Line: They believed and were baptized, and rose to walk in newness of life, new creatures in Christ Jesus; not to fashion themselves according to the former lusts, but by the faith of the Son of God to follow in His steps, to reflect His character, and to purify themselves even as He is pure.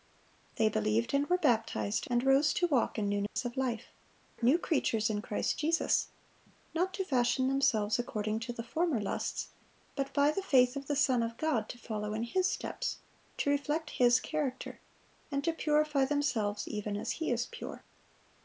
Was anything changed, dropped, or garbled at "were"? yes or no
no